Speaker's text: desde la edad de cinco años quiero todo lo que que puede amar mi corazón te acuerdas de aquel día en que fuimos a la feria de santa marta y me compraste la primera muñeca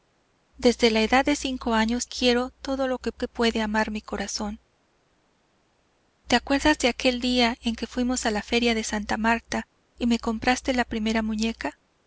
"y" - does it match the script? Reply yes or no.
yes